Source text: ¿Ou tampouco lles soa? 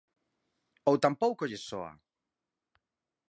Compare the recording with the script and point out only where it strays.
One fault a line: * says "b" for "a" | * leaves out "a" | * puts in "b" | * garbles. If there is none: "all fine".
all fine